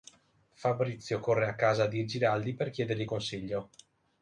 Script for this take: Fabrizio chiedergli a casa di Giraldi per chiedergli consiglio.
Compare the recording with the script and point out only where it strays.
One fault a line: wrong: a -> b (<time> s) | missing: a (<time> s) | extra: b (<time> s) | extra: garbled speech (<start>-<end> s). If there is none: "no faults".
wrong: chiedergli -> corre (1.2 s)